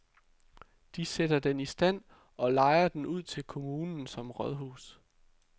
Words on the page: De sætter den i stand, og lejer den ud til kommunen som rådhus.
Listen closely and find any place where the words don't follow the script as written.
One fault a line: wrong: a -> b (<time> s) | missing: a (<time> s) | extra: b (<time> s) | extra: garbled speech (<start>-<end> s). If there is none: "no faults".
no faults